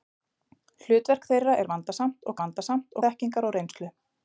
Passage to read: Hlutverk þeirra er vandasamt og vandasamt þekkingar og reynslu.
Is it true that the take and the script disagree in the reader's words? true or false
false